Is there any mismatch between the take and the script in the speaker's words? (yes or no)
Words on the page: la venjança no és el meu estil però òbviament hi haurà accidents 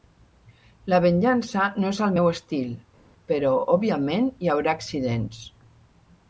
no